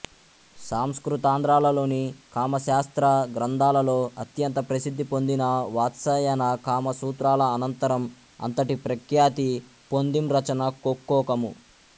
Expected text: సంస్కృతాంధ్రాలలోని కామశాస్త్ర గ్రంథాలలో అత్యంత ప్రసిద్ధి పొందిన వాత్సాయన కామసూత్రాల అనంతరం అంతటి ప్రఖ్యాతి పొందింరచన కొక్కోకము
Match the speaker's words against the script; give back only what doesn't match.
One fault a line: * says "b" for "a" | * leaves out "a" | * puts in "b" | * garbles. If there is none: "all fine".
all fine